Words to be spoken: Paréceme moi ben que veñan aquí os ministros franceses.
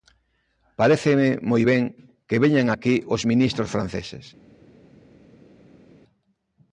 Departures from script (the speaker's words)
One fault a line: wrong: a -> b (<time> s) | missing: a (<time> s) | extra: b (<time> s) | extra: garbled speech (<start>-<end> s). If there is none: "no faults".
no faults